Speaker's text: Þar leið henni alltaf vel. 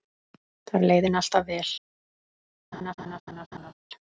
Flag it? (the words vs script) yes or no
no